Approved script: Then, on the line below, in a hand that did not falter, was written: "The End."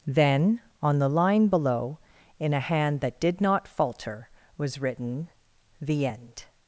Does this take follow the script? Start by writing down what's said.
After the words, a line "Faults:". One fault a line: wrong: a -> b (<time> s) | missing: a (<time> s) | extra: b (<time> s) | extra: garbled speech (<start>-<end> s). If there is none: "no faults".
Then, on the line below, in a hand that did not falter, was written: "The End."
Faults:
no faults